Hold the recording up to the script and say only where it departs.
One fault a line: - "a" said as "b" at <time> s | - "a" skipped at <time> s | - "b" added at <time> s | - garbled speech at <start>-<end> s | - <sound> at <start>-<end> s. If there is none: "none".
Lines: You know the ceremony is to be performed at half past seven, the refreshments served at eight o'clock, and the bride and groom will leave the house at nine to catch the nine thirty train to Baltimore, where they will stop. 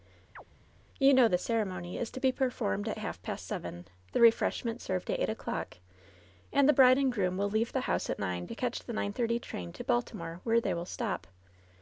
- chirp at 0.4-0.4 s